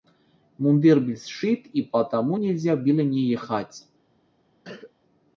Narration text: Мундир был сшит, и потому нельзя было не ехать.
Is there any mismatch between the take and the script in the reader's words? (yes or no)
no